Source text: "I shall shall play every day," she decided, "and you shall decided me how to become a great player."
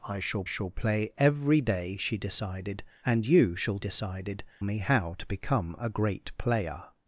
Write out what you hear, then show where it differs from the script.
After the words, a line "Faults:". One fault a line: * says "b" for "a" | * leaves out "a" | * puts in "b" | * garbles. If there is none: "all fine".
"I shall shall play every day," she decided, "and you shall decided me how to become a great player."
Faults:
all fine